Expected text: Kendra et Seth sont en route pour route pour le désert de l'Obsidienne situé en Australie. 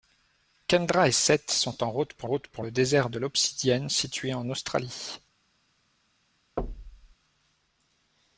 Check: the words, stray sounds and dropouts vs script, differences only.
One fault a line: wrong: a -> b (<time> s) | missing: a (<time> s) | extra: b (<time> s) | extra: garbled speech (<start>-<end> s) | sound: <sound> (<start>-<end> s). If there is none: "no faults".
sound: thud (6.6-7.2 s)